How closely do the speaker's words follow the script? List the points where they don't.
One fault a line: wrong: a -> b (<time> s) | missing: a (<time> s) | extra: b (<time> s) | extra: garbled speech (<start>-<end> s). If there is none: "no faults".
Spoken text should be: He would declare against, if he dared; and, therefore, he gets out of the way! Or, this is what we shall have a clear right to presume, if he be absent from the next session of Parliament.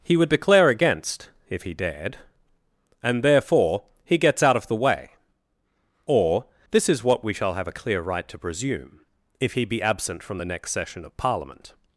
no faults